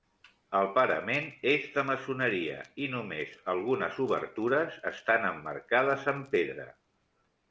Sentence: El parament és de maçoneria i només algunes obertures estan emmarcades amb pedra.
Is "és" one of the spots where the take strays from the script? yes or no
no